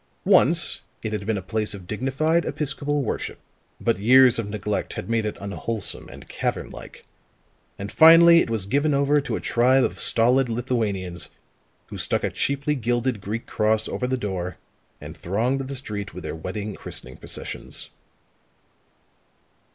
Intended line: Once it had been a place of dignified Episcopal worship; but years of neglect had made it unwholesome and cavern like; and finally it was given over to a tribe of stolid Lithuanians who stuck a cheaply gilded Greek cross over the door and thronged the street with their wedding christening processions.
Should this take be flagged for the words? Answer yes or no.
no